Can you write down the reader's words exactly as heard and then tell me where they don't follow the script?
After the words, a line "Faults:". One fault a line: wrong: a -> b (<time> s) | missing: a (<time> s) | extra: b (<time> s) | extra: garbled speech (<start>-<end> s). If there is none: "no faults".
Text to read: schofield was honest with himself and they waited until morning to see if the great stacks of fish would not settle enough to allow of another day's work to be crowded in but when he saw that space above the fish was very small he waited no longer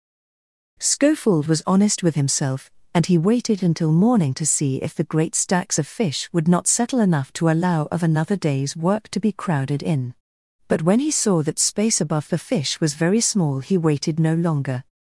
schofield was honest with himself and he waited until morning to see if the great stacks of fish would not settle enough to allow of another day's work to be crowded in but when he saw that space above the fish was very small he waited no longer
Faults:
wrong: they -> he (3.1 s)